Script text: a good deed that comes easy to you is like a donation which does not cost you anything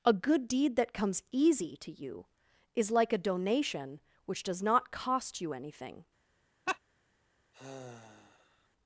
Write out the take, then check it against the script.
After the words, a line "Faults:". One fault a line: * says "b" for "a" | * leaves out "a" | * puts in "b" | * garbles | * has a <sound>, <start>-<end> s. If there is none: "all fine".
a good deed that comes easy to you is like a donation which does not cost you anything
Faults:
* has a laugh, 6.7-6.8 s
* has a sigh, 7.5-8.7 s